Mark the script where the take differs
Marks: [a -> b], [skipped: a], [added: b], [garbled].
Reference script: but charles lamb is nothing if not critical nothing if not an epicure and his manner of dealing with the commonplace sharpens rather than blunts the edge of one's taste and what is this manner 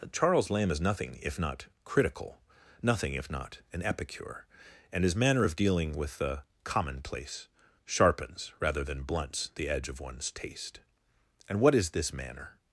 [skipped: but] charles lamb is nothing if not critical nothing if not an epicure and his manner of dealing with the commonplace sharpens rather than blunts the edge of one's taste and what is this manner